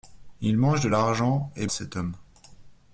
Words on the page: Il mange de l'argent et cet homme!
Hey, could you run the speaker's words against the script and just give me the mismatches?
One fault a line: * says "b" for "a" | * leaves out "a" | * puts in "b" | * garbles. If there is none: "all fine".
all fine